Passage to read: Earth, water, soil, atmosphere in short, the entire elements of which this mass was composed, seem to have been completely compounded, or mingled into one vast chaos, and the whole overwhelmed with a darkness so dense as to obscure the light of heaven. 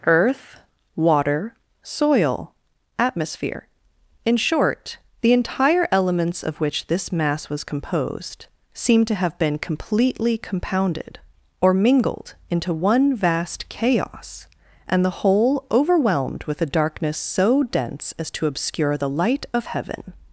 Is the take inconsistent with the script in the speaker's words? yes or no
no